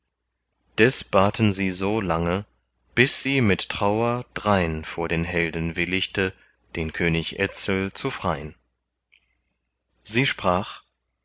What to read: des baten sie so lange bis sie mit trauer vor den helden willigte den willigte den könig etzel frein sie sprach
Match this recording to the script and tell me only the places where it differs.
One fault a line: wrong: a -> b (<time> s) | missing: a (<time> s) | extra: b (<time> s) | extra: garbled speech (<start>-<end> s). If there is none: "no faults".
extra: drein (4.3 s)
missing: willigte den (6.9 s)
extra: zu (7.9 s)